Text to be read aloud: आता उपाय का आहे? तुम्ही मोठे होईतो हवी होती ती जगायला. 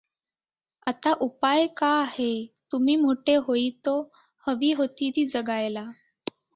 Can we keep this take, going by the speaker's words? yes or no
yes